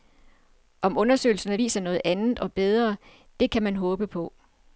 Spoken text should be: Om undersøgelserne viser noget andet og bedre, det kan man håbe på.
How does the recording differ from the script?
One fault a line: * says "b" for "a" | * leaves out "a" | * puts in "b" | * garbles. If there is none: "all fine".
all fine